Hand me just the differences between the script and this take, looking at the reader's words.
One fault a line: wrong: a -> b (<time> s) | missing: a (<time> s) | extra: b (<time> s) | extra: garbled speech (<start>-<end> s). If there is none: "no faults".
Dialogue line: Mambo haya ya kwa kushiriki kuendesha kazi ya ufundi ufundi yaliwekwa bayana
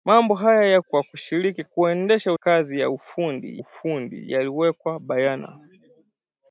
no faults